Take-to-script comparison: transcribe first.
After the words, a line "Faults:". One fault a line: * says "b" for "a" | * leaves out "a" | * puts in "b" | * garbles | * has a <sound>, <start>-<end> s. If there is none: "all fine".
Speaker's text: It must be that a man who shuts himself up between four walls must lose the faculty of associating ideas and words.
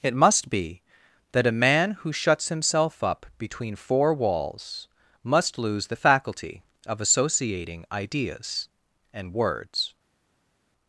It must be that a man who shuts himself up between four walls must lose the faculty of associating ideas and words.
Faults:
all fine